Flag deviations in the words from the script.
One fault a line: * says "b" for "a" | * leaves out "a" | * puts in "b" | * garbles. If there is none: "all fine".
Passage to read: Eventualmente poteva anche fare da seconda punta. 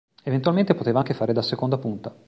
all fine